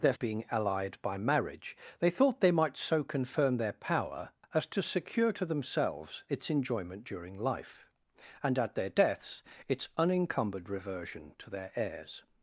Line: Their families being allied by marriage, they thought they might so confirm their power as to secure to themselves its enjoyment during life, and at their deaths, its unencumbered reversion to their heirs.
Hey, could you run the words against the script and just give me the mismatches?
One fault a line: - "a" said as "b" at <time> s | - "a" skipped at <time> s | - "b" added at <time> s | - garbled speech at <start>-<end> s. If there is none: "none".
- "families" skipped at 0.1 s